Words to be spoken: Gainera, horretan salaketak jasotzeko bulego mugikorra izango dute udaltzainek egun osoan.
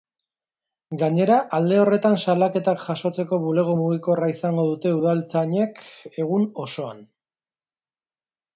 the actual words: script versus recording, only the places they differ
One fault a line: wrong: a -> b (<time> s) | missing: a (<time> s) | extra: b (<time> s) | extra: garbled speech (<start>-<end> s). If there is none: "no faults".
extra: alde (1.6 s)